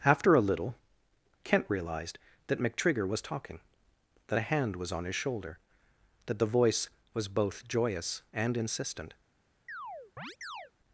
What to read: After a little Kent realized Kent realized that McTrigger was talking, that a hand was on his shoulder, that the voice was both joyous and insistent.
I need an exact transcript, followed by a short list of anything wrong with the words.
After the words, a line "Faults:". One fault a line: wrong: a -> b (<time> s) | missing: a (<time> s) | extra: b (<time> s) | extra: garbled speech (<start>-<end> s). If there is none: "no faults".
After a little Kent realized that McTrigger was talking, that a hand was on his shoulder, that the voice was both joyous and insistent.
Faults:
missing: Kent realized (2.2 s)